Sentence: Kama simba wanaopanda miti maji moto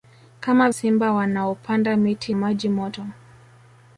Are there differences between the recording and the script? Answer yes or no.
no